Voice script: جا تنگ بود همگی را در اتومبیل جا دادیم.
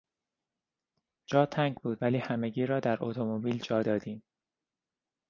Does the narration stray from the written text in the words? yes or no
yes